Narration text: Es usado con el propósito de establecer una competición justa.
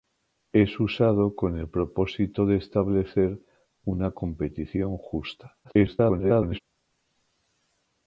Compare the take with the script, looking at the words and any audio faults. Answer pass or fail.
fail